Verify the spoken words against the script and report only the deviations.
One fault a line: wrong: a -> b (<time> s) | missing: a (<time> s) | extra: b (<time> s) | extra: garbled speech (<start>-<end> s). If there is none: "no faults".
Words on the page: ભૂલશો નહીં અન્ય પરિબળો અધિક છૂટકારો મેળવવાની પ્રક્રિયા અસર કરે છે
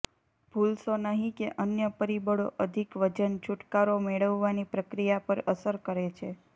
extra: કે (1.4 s)
extra: વજન (3.0 s)
extra: પર (5.3 s)